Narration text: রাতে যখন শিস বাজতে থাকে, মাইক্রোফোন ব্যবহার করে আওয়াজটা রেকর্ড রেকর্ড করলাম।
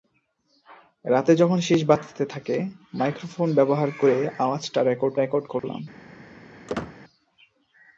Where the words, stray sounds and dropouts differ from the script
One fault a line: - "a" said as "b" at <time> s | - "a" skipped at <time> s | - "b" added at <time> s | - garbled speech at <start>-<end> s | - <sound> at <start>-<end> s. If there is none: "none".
- dropout at 5.6-5.6 s
- squeak at 6.7-7.0 s